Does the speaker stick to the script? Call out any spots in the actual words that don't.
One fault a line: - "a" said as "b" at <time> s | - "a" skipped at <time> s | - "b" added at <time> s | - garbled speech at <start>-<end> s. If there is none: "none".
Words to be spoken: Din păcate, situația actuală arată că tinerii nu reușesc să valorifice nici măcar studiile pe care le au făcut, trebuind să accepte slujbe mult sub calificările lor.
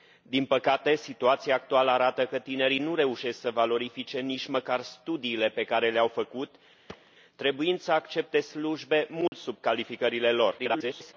- garbled speech at 10.6-11.1 s